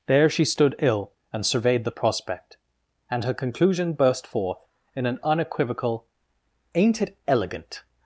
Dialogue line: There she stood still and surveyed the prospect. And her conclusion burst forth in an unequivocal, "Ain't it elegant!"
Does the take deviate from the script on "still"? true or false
true